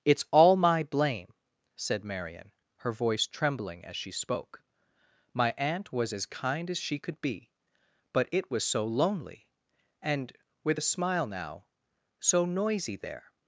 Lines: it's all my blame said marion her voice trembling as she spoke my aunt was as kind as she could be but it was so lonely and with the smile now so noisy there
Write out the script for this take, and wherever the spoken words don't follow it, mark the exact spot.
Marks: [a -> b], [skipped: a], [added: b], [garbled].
it's all my blame said marion her voice trembling as she spoke my aunt was as kind as she could be but it was so lonely and with [the -> a] smile now so noisy there